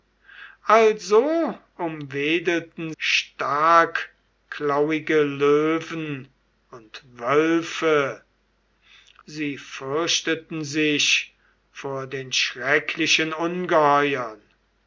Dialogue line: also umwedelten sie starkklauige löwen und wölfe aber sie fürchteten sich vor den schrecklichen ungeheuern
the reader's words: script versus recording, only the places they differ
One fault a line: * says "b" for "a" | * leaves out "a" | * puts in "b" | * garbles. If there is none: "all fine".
* leaves out "sie"
* leaves out "aber"